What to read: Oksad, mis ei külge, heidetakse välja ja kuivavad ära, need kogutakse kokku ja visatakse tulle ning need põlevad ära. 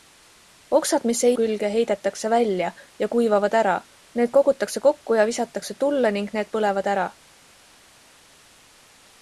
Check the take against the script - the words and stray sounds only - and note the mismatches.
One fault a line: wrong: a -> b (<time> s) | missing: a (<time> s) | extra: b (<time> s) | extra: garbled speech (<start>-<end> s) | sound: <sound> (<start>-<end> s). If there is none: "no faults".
no faults